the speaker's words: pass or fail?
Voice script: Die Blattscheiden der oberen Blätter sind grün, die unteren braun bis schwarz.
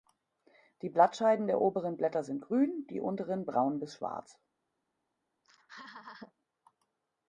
pass